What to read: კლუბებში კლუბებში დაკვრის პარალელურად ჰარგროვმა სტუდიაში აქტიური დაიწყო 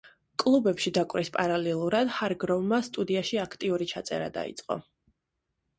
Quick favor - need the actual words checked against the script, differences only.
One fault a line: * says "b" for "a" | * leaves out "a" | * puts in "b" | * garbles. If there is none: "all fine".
* leaves out "კლუბებში"
* puts in "ჩაწერა"